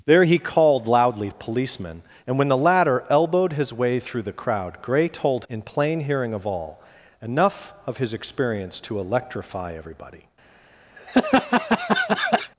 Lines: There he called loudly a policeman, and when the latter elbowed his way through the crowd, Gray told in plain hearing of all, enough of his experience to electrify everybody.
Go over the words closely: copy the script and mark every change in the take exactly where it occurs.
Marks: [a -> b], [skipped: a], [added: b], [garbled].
There he called loudly a policeman, and when the latter elbowed his way through the crowd, Gray told in plain hearing of all, enough of his experience to electrify everybody.